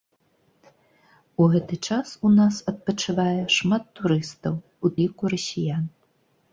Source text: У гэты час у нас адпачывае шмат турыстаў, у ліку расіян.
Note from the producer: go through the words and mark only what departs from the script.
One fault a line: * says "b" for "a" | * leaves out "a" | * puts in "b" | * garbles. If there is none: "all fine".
all fine